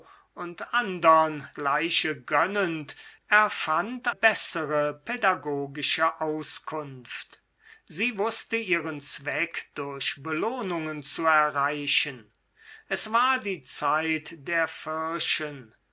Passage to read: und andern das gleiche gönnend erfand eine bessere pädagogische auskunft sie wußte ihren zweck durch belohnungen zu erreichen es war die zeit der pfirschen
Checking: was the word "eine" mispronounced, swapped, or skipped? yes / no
yes